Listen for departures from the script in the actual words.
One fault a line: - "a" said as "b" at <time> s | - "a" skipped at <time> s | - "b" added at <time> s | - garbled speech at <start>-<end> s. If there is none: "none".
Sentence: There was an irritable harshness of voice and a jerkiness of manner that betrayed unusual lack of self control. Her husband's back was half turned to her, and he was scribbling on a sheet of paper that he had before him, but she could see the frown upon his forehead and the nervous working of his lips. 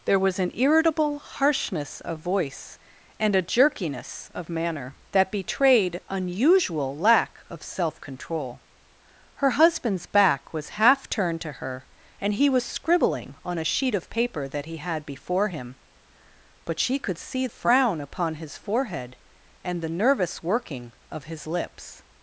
- "the" skipped at 17.5 s